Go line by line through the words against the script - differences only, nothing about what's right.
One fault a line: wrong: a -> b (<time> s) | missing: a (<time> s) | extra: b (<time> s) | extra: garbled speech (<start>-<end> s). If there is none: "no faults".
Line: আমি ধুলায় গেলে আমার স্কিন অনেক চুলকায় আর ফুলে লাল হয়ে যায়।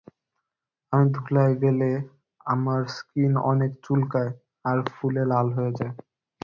no faults